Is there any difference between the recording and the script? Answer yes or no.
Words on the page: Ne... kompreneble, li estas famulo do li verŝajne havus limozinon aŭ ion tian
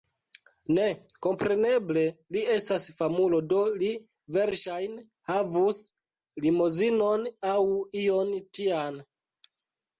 no